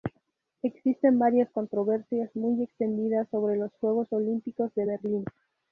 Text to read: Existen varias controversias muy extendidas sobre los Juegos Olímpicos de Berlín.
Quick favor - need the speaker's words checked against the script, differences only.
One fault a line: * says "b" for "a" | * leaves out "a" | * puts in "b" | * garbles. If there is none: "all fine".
all fine